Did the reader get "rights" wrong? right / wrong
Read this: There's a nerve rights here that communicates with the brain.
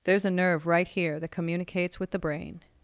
wrong